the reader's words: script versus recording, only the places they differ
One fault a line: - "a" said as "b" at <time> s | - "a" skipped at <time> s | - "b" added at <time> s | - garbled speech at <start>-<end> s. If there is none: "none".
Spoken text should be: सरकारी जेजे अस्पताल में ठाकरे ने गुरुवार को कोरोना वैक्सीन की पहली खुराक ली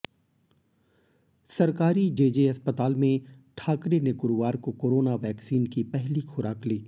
none